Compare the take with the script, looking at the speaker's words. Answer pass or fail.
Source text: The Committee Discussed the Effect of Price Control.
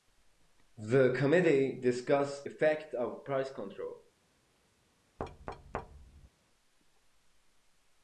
fail